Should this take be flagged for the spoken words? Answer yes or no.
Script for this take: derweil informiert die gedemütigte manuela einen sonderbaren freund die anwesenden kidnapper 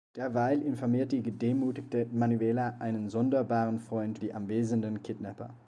no